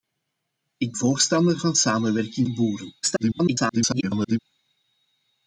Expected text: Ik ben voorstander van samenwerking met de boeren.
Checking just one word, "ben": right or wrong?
wrong